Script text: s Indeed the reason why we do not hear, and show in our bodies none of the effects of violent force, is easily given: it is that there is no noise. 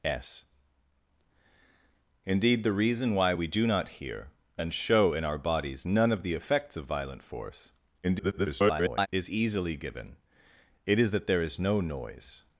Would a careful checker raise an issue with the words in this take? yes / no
yes